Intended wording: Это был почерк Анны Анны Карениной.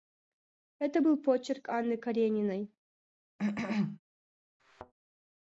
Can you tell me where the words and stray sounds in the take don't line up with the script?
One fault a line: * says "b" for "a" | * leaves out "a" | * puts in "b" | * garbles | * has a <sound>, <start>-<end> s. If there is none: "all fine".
* leaves out "Анны"
* has a cough, 3.4-4.0 s
* has a thud, 4.6-4.9 s